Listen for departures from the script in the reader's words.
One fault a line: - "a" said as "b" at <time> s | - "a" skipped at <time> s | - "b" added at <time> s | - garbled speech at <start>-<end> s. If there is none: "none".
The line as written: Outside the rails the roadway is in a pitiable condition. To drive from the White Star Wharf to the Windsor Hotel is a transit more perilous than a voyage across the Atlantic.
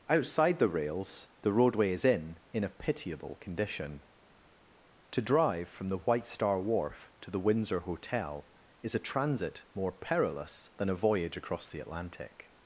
- "in" added at 2.5 s